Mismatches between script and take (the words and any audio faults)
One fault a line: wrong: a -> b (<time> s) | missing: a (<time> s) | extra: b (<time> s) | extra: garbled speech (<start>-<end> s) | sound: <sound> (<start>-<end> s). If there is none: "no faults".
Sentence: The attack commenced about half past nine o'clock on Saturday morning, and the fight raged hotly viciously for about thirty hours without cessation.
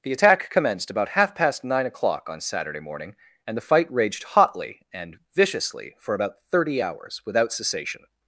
extra: and (4.9 s)